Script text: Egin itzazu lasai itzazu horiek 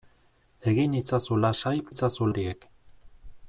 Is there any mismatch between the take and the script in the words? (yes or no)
no